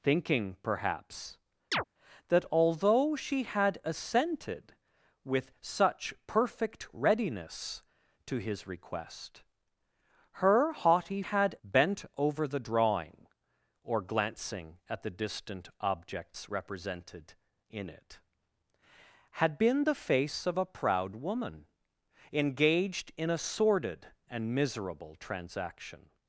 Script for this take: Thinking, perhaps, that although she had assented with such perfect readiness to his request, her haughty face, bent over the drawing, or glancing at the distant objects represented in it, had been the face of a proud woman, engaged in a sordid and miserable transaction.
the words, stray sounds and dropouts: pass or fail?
fail